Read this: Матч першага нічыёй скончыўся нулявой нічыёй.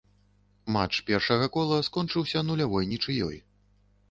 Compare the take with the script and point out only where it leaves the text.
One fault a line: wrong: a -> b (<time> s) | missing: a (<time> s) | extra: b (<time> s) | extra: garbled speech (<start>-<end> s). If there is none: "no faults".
wrong: нічыёй -> кола (1.6 s)